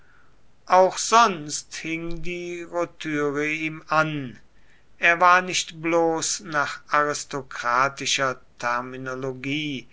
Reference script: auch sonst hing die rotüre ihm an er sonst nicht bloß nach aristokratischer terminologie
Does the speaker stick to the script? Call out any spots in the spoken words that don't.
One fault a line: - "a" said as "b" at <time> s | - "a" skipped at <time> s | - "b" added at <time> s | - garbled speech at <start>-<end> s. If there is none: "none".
- "sonst" said as "war" at 5.2 s